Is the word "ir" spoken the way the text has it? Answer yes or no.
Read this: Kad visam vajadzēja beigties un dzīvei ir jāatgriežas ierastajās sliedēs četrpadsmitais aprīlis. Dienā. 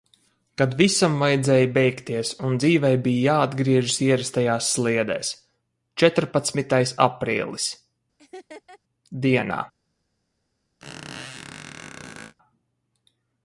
no